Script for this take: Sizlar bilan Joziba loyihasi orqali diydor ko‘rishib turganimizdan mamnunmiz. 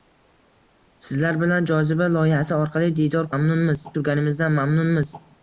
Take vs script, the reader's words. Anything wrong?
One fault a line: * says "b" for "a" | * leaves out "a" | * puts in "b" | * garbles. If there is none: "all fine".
* says "mamnunmiz" for "ko‘rishib"